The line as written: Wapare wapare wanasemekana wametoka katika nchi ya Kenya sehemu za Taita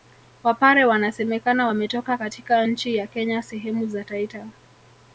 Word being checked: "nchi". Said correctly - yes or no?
yes